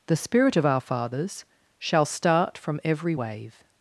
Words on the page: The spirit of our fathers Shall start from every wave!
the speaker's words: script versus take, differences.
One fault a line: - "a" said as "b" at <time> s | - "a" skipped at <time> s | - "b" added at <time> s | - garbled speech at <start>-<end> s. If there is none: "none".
none